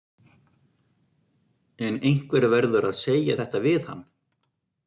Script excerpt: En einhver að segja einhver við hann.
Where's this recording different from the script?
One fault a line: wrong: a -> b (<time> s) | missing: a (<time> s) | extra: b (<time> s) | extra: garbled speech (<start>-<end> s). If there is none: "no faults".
extra: verður (2.5 s)
wrong: einhver -> þetta (3.4 s)